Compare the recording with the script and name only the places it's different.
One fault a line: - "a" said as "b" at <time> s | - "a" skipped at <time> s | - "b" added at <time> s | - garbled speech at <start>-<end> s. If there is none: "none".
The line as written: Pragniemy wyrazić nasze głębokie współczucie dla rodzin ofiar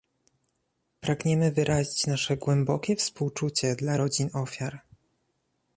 none